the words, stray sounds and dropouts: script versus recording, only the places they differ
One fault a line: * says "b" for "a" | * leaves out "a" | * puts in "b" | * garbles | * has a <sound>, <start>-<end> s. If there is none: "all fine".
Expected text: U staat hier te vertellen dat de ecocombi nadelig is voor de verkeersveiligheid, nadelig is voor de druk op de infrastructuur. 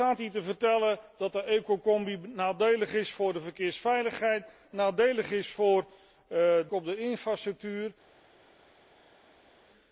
* leaves out "de druk"